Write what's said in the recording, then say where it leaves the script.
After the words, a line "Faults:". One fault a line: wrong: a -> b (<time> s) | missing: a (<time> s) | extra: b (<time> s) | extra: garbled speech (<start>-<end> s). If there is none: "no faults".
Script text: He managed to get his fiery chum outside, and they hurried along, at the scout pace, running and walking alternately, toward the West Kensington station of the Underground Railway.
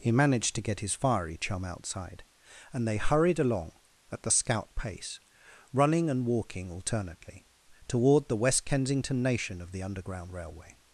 He managed to get his fiery chum outside, and they hurried along, at the scout pace, running and walking alternately, toward the West Kensington nation of the Underground Railway.
Faults:
wrong: station -> nation (9.2 s)